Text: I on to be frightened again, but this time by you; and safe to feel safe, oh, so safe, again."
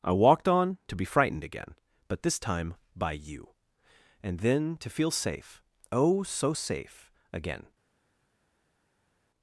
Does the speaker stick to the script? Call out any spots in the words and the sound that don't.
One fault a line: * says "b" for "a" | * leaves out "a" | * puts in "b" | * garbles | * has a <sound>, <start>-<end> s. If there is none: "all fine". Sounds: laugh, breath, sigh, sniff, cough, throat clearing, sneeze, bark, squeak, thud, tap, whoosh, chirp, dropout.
* puts in "walked"
* says "then" for "safe"